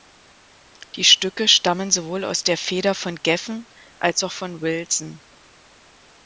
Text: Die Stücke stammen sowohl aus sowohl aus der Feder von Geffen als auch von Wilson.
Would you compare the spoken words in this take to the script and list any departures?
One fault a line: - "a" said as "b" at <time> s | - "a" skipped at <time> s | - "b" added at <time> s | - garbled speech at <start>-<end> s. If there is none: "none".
- "sowohl aus" skipped at 2.4 s